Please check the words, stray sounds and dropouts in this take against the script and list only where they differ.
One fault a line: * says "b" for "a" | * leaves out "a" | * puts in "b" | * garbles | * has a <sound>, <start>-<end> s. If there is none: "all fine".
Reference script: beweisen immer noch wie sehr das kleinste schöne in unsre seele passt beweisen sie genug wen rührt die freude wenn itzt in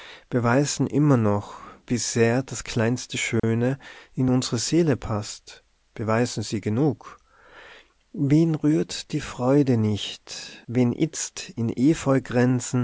* has a dropout, 3.4-3.4 s
* puts in "nicht"